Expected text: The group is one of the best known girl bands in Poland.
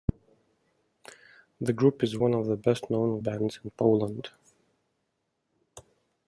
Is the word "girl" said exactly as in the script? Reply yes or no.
no